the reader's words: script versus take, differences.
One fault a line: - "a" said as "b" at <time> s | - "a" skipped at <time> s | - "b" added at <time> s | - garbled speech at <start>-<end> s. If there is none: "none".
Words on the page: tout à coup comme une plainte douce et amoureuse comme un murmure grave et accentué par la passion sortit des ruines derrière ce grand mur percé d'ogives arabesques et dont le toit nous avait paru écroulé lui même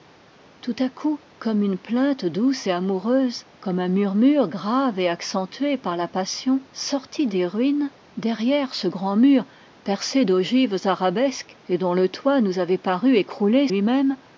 none